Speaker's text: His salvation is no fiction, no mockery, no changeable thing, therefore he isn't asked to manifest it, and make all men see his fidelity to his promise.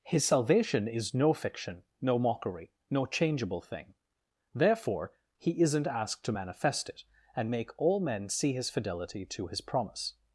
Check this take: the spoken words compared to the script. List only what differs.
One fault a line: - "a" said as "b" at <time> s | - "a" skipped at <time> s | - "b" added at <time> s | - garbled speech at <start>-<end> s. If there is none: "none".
none